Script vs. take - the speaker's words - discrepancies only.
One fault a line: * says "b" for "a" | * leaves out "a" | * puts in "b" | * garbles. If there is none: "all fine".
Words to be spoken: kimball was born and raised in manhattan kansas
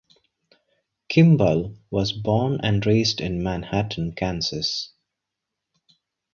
all fine